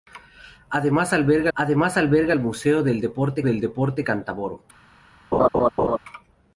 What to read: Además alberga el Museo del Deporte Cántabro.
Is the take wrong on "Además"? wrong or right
right